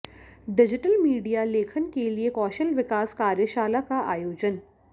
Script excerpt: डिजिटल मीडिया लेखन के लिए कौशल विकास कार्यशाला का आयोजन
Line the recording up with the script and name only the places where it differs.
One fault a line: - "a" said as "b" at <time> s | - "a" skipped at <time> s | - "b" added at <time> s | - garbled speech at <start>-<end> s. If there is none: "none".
none